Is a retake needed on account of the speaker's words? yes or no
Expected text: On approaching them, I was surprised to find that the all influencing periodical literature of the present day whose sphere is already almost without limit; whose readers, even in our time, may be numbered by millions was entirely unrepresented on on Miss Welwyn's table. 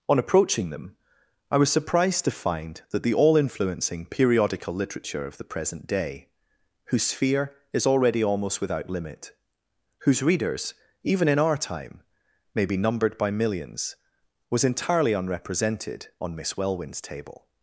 yes